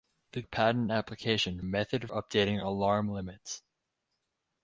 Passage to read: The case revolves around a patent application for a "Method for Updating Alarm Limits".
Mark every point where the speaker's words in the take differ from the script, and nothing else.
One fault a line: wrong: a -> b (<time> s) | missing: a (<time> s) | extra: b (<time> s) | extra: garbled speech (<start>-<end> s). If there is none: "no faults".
missing: case revolves around (0.4 s)
missing: for (1.6 s)
missing: for (2.1 s)